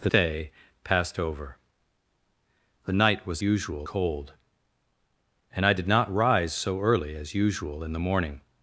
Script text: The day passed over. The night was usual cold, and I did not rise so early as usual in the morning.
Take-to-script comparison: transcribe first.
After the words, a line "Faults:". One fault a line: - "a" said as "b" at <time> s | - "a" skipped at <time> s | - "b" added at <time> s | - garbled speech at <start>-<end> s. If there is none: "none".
The day passed over. The night was usual cold, and I did not rise so early as usual in the morning.
Faults:
none